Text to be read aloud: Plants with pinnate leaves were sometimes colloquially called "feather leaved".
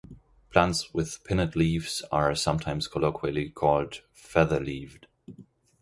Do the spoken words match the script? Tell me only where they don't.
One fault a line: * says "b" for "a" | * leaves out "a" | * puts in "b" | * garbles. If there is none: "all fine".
* says "are" for "were"